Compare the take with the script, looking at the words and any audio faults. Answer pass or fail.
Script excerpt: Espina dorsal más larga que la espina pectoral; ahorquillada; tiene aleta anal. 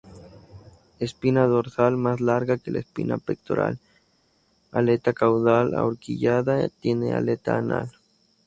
fail